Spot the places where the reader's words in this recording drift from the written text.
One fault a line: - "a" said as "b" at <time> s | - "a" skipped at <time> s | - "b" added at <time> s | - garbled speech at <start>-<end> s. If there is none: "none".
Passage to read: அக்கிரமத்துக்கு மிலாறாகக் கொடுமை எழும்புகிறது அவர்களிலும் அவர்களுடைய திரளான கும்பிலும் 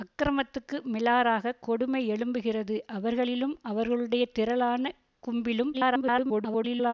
- garbled speech at 5.7-6.9 s